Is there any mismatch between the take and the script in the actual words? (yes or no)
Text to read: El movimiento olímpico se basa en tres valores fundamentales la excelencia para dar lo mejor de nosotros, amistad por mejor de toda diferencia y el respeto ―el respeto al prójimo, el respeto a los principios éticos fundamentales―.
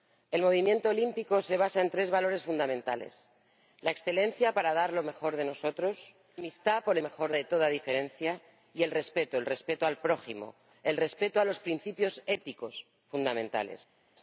no